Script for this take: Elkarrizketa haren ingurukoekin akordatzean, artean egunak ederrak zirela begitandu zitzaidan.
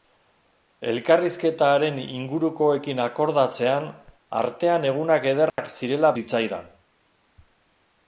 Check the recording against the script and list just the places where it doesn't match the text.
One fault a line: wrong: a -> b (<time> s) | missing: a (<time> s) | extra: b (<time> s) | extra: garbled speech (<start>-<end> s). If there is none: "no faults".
missing: begitandu (6.1 s)